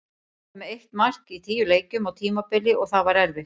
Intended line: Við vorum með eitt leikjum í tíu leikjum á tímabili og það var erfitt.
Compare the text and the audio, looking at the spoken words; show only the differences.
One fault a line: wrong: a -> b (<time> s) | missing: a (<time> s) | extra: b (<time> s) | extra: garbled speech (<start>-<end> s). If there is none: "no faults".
wrong: leikjum -> mark (1.0 s)